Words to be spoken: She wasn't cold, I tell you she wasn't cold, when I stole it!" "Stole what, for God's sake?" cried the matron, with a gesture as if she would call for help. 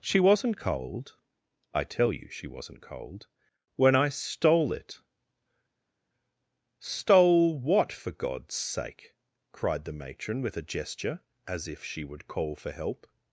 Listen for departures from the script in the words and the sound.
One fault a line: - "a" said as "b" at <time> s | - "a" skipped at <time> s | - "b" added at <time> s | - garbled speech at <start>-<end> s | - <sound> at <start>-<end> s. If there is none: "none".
none